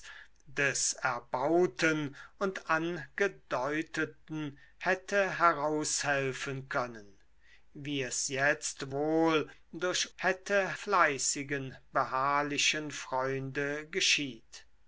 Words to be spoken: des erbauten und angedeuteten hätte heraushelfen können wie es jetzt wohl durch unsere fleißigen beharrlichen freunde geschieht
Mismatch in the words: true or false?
true